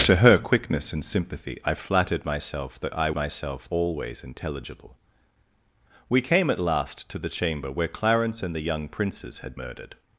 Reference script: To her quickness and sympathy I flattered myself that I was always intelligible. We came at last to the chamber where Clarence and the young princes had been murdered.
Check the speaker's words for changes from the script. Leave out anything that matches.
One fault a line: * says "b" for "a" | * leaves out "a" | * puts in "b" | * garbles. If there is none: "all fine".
* says "myself" for "was"
* leaves out "been"